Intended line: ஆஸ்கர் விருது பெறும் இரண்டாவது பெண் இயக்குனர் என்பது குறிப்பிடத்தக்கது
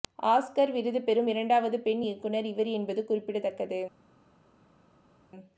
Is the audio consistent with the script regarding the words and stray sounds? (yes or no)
no